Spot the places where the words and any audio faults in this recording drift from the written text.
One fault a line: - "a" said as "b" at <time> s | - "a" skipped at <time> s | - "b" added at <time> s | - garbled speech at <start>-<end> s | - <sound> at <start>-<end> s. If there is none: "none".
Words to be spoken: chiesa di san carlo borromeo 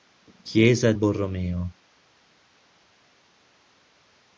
- "di san carlo" skipped at 0.9 s